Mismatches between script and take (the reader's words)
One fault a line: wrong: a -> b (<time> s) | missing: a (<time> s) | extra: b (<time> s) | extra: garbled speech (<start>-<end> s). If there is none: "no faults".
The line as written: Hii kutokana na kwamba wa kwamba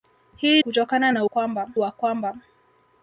no faults